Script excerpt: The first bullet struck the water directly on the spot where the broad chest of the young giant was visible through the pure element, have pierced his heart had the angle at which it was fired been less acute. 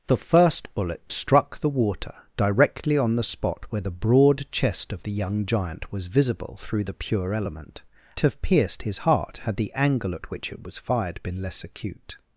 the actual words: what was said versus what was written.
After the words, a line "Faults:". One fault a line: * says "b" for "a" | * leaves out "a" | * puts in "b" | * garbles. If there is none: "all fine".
The first bullet struck the water directly on the spot where the broad chest of the young giant was visible through the pure element, have pierced his heart had the angle at which it was fired been less acute.
Faults:
all fine